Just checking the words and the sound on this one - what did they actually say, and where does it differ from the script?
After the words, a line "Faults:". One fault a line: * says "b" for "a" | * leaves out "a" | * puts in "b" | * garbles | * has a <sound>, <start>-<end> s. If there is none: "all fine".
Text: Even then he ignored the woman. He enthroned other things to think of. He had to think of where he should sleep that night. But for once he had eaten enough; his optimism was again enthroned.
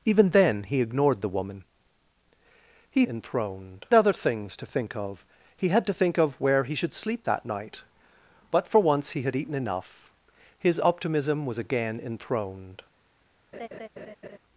Even then he ignored the woman. He enthroned other things to think of. He had to think of where he should sleep that night. But for once he had eaten enough; his optimism was again enthroned.
Faults:
* has a laugh, 13.5-14.4 s